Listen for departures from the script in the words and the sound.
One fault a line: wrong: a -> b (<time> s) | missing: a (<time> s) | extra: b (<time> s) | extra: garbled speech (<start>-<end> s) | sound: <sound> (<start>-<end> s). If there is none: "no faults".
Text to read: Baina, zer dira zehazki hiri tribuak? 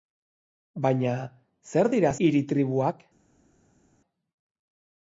missing: zehazki (2.1 s)